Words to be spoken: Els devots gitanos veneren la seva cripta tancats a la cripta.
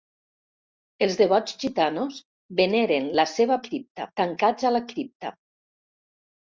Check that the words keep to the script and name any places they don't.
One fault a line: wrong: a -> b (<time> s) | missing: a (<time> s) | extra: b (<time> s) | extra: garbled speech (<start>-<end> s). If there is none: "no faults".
no faults